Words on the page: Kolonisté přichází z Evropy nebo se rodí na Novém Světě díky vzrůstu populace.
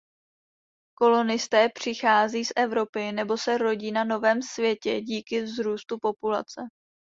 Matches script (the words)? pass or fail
pass